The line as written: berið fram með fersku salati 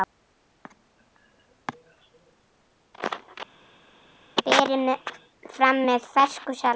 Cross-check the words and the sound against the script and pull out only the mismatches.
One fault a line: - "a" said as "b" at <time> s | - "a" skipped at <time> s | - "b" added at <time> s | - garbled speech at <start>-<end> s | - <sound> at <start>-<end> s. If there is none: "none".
none